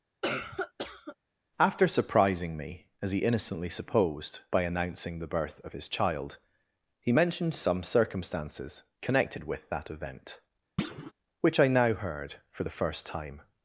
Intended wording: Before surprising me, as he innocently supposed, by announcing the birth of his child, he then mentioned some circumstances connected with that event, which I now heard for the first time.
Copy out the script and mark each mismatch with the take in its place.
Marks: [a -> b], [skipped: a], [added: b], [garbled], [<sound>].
[cough] [Before -> After] surprising me, as he innocently supposed, by announcing the birth of his child, he [skipped: then] mentioned some circumstances connected with that event, [thud] which I now heard for the first time.